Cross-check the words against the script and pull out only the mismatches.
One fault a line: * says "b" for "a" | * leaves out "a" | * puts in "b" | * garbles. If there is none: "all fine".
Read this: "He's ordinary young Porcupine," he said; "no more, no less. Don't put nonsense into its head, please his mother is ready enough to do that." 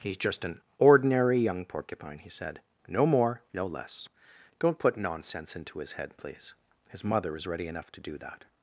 * puts in "just an"
* says "his" for "its"